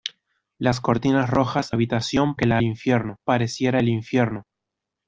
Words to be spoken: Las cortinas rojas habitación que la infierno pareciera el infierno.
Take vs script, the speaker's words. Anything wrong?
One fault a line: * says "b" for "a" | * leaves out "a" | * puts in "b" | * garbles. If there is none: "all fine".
all fine